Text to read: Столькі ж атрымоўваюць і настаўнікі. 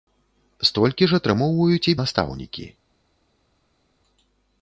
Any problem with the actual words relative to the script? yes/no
no